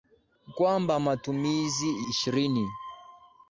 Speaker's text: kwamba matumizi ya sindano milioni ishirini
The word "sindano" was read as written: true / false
false